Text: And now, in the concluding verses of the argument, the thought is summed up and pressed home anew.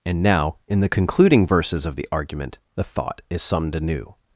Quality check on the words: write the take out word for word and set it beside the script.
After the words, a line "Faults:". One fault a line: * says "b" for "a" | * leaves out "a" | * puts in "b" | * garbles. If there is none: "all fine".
And now, in the concluding verses of the argument, the thought is summed anew.
Faults:
* leaves out "up and pressed home"